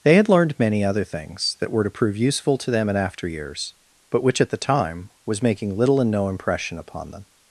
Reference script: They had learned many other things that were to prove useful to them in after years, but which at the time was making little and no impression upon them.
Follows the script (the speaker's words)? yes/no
yes